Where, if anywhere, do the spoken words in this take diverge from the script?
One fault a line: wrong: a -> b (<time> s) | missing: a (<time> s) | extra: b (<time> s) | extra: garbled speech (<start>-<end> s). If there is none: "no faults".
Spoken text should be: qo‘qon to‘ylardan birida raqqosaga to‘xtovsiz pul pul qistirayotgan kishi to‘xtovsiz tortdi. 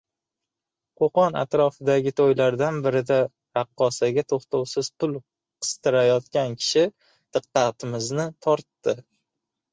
extra: atrofidagi (1.4 s)
missing: pul (5.2 s)
wrong: to‘xtovsiz -> diqqatimizni (7.4 s)